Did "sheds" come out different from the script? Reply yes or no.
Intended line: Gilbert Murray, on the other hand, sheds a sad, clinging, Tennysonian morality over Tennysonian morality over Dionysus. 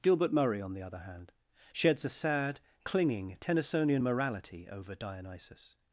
no